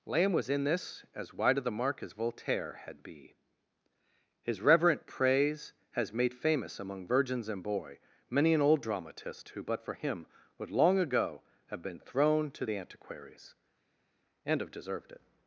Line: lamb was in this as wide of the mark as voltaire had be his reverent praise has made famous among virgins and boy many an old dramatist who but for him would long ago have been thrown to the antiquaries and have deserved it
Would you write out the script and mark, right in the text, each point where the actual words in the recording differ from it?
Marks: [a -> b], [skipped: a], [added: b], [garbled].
lamb was in this as wide of the mark as voltaire had be his reverent praise has made famous among virgins and boy many an old dramatist who but for him would long ago have been thrown to the antiquaries and have deserved it